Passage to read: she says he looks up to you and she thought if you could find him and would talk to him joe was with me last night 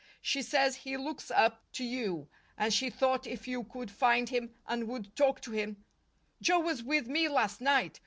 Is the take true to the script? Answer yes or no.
yes